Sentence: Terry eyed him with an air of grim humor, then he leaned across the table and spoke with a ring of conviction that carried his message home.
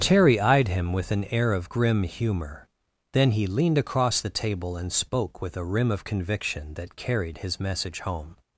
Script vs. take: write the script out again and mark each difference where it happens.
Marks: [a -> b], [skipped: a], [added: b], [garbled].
Terry eyed him with an air of grim humor, then he leaned across the table and spoke with a [ring -> rim] of conviction that carried his message home.